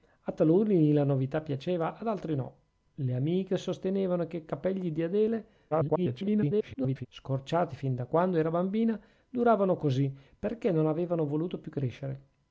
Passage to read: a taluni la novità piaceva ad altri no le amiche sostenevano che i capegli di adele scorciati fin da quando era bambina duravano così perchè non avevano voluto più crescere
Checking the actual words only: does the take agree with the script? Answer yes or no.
no